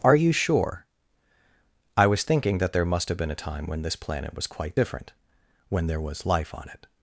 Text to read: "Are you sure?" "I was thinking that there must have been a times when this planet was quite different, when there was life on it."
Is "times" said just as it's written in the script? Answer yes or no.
no